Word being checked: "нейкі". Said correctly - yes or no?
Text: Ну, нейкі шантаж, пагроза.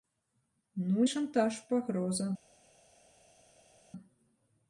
no